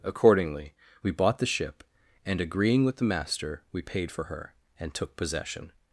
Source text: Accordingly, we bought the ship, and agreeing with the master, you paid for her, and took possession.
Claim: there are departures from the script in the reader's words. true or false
true